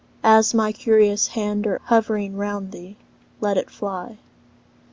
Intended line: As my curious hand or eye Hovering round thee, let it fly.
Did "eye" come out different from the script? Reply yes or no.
yes